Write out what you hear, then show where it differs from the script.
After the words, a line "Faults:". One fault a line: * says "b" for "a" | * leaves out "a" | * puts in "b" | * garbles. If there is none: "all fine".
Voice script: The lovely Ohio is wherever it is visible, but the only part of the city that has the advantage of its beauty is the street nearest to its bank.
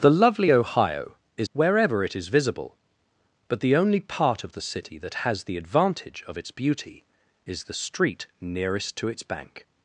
The lovely Ohio is wherever it is visible, but the only part of the city that has the advantage of its beauty is the street nearest to its bank.
Faults:
all fine